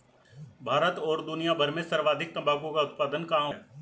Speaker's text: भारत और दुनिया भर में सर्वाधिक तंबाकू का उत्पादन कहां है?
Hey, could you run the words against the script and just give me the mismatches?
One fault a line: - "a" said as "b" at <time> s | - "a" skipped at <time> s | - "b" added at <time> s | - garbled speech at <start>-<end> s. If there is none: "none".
none